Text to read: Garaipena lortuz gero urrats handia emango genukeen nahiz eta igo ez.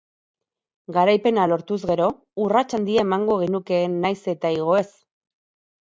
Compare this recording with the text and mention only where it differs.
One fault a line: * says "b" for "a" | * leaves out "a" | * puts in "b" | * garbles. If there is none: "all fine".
all fine